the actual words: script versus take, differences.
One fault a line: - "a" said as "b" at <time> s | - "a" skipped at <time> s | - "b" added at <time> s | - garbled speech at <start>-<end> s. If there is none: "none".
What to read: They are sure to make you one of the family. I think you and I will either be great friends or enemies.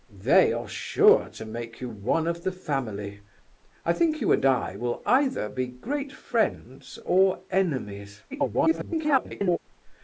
- garbled speech at 8.3-9.6 s